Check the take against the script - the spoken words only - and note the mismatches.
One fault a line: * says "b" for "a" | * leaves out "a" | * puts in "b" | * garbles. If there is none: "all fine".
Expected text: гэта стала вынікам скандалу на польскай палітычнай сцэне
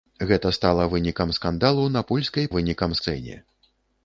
* says "вынікам" for "палітычнай"